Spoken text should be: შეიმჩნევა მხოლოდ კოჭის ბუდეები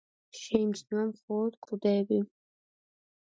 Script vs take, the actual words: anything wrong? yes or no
yes